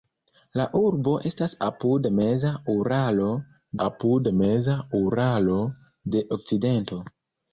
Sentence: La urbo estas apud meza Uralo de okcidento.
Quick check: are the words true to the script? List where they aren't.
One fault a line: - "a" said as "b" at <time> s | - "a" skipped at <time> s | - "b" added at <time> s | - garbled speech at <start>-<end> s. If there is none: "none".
- "apud meza Uralo" added at 3.9 s